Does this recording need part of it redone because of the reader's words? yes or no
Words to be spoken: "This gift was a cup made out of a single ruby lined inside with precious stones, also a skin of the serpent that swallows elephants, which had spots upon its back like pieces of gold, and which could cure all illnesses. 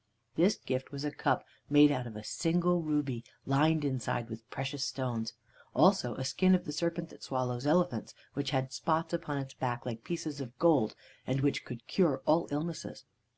no